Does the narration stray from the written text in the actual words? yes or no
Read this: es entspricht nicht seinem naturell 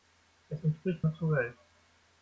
yes